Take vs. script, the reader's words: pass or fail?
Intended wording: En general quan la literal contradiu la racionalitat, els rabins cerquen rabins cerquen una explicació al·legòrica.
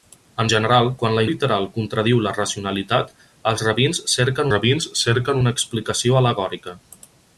pass